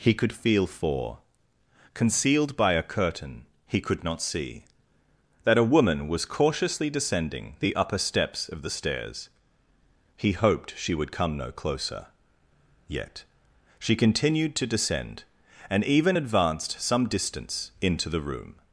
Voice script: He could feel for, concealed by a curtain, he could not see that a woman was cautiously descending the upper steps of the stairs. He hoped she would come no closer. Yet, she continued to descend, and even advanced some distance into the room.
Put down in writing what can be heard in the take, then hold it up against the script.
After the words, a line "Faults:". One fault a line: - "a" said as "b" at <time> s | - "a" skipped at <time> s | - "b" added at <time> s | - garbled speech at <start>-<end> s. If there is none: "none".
He could feel for, concealed by a curtain, he could not see that a woman was cautiously descending the upper steps of the stairs. He hoped she would come no closer. Yet, she continued to descend, and even advanced some distance into the room.
Faults:
none